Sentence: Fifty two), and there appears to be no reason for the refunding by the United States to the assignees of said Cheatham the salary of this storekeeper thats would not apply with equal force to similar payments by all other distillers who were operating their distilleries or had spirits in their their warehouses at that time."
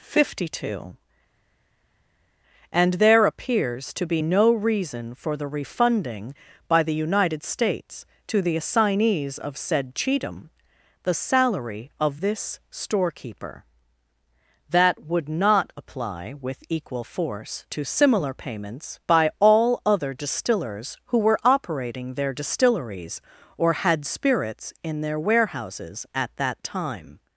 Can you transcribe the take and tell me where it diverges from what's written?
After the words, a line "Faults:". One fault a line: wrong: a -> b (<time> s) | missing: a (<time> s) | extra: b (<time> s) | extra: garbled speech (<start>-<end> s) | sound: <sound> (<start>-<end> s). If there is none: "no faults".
Fifty two), and there appears to be no reason for the refunding by the United States to the assignees of said Cheatham the salary of this storekeeper that would not apply with equal force to similar payments by all other distillers who were operating their distilleries or had spirits in their warehouses at that time."
Faults:
wrong: thats -> that (14.7 s)
missing: their (25.2 s)